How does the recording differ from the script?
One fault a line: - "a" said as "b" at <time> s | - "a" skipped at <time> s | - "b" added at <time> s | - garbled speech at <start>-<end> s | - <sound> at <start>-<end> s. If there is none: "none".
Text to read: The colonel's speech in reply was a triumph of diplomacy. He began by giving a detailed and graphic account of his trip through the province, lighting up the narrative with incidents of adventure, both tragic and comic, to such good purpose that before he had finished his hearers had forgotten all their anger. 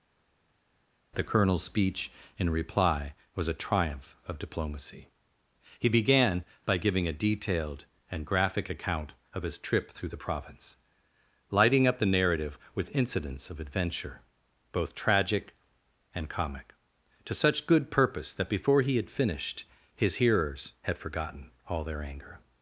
none